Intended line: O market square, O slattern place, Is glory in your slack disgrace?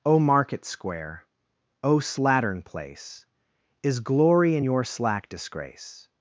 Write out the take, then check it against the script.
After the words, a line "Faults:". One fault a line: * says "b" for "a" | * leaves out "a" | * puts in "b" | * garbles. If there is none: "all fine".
O market square, O slattern place, Is glory in your slack disgrace?
Faults:
all fine